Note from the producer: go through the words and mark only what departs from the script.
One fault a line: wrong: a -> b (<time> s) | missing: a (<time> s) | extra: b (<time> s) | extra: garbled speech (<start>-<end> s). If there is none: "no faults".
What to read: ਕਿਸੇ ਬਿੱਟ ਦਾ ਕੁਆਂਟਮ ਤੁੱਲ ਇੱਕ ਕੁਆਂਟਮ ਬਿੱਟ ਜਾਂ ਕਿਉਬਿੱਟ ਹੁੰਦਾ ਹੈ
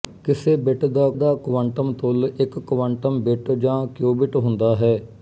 extra: ਦਾ (1.1 s)